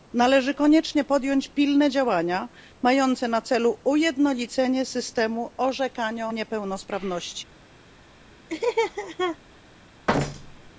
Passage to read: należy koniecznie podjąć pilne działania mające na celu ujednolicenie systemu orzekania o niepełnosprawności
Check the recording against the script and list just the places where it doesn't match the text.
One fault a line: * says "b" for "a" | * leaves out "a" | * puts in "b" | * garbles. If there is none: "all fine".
all fine